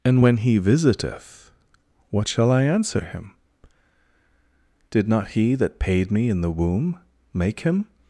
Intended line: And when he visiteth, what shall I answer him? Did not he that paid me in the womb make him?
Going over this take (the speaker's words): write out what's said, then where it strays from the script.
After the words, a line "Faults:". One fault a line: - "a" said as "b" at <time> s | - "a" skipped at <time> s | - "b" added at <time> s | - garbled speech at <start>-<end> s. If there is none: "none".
And when he visiteth, what shall I answer him? Did not he that paid me in the womb make him?
Faults:
none